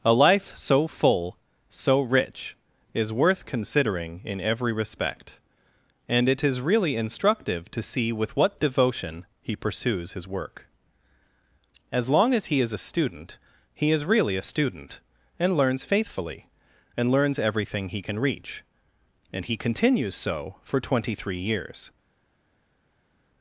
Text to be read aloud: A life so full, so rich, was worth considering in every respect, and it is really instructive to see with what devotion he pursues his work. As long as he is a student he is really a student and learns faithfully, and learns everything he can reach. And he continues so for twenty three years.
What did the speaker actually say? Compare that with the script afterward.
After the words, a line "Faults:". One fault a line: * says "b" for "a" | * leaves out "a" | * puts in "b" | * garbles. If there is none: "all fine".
A life so full, so rich, is worth considering in every respect, and it is really instructive to see with what devotion he pursues his work. As long as he is a student he is really a student and learns faithfully, and learns everything he can reach. And he continues so for twenty three years.
Faults:
* says "is" for "was"